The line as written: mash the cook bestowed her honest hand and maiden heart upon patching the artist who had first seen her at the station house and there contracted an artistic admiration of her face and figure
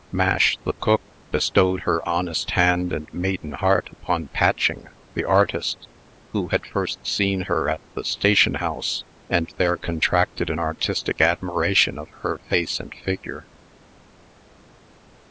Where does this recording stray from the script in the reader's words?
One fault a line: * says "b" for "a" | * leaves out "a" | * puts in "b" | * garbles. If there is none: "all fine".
all fine